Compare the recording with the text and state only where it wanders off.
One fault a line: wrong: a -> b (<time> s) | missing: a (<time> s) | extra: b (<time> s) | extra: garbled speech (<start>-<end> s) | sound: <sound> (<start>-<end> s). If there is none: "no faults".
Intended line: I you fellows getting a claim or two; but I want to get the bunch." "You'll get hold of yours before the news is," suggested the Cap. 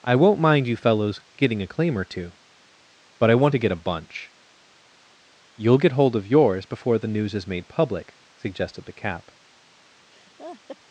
extra: won't mind (0.1 s)
wrong: the -> a (3.7 s)
extra: made public (7.5 s)
sound: laugh (10.1-10.8 s)